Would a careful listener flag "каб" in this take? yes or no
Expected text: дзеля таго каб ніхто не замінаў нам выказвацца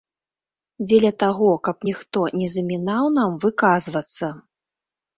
no